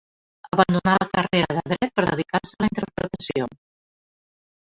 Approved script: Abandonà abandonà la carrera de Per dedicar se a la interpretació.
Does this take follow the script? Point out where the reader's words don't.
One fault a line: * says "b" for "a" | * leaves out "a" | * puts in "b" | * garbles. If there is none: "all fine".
* leaves out "abandonà"
* puts in "Dret"